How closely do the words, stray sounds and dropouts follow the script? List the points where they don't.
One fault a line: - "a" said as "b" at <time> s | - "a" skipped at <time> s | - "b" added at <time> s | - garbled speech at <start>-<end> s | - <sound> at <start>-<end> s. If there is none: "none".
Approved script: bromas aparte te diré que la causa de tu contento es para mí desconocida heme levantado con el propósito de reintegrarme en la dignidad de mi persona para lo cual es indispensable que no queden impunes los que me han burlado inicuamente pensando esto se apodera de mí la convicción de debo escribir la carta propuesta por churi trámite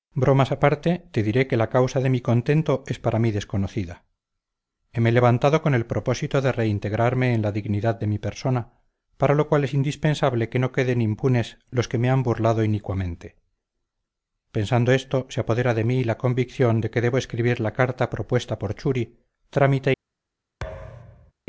- "tu" said as "mi" at 2.1 s
- "que" added at 16.9 s
- thud at 20.6-21.3 s